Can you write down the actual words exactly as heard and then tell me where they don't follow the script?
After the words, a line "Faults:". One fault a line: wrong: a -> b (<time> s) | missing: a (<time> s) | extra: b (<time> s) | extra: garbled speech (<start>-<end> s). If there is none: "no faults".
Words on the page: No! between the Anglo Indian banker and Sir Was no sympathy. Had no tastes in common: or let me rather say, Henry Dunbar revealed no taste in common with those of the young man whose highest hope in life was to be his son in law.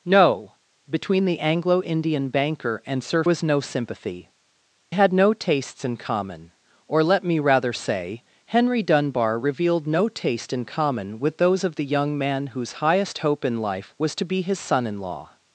No! between the Anglo Indian banker and Sir Was no sympathy. Had no tastes in common: or let me rather say, Henry Dunbar revealed no taste in common with those of the young man whose highest hope in life was to be his son in law.
Faults:
no faults